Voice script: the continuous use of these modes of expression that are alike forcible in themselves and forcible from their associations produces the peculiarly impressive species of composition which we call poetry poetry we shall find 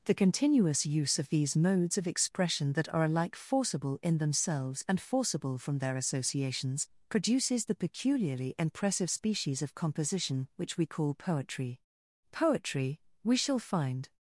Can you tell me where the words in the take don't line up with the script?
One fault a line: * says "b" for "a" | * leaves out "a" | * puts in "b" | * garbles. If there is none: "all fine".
all fine